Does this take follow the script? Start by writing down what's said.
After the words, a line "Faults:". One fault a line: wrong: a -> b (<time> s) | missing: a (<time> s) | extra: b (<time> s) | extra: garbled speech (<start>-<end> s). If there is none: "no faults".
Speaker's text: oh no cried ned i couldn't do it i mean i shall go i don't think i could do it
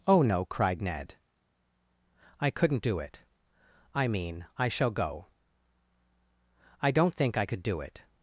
oh no cried ned i couldn't do it i mean i shall go i don't think i could do it
Faults:
no faults